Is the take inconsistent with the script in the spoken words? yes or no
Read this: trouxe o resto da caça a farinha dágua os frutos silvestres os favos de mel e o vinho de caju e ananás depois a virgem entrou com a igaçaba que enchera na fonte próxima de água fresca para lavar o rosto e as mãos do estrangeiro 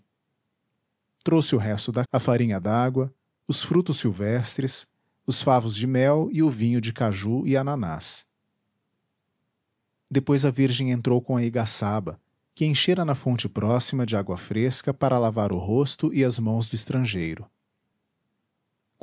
yes